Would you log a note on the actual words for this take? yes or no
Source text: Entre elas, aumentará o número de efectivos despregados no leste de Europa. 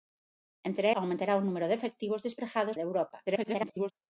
yes